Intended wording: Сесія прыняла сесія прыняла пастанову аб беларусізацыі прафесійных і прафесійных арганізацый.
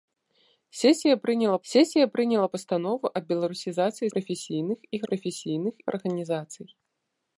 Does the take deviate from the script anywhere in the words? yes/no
no